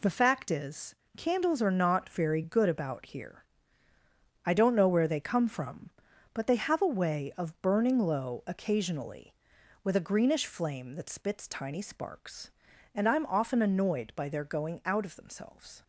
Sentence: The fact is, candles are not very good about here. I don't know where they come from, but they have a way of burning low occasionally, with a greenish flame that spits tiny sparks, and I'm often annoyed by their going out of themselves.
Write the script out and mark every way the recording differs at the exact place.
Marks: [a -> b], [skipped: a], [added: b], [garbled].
The fact is, candles are not very good about here. I don't know where they come from, but they have a way of burning low occasionally, with a greenish flame that spits tiny sparks, and I'm often annoyed by their going out of themselves.